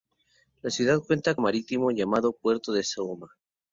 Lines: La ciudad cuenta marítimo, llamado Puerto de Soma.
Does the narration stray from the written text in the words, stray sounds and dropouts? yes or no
no